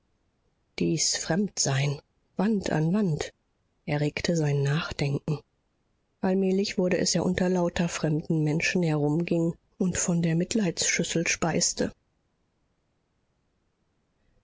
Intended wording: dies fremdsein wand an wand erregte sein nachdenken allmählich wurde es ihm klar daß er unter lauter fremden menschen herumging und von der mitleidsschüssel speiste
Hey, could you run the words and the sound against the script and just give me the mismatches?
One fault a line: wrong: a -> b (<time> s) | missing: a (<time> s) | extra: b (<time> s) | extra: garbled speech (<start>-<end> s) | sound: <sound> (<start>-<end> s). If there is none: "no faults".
missing: ihm klar daß (7.1 s)